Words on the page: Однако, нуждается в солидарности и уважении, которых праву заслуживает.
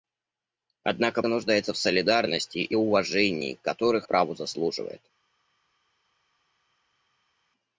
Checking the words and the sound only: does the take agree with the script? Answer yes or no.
yes